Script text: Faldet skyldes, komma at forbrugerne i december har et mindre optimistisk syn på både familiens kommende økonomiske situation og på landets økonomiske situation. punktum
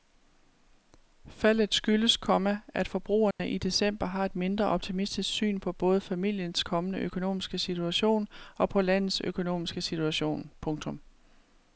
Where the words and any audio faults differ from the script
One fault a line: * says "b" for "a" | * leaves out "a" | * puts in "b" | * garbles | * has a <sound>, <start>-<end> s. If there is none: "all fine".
* has a dropout, 3.3-3.4 s